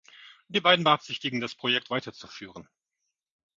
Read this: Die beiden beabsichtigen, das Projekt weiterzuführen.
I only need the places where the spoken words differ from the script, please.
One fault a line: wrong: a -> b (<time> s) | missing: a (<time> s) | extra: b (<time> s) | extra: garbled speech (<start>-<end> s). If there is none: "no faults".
no faults